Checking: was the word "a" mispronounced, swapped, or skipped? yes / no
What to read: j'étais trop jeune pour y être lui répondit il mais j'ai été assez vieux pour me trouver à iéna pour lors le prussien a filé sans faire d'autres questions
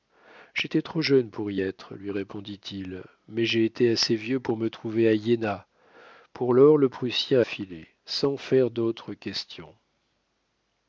yes